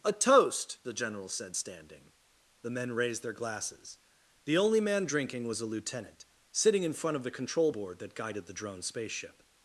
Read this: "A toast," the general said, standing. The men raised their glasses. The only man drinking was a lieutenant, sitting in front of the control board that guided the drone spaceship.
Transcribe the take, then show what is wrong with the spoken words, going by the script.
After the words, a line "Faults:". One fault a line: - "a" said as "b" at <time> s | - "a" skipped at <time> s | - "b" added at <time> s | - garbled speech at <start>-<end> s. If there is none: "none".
"A toast," the general said, standing. The men raised their glasses. The only man drinking was a lieutenant, sitting in front of the control board that guided the drone spaceship.
Faults:
none